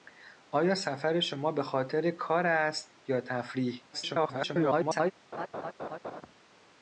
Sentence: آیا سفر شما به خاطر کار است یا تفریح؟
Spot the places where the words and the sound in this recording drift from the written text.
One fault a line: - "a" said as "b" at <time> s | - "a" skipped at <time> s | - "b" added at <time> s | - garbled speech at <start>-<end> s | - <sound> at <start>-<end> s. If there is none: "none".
- garbled speech at 3.9-5.1 s
- laugh at 5.3-6.2 s